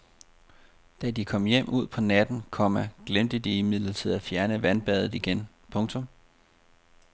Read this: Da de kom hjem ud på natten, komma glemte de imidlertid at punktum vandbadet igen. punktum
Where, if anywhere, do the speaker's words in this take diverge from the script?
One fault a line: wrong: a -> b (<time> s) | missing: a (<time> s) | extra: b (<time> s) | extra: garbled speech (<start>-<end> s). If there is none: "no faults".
wrong: punktum -> fjerne (4.2 s)